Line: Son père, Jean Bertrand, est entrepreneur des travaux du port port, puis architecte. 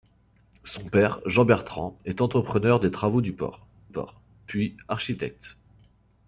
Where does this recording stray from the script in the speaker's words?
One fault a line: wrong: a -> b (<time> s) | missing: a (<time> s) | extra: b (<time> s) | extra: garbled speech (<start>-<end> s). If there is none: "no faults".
no faults